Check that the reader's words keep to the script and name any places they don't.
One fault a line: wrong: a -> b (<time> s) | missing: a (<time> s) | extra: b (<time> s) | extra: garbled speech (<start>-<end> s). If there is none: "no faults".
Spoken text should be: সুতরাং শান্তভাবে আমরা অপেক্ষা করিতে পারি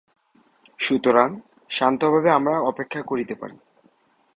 no faults